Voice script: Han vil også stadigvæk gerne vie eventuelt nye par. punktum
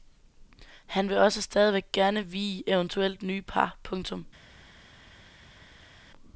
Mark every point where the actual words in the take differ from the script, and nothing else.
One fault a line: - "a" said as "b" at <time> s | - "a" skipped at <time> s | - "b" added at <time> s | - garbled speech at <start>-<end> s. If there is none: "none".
none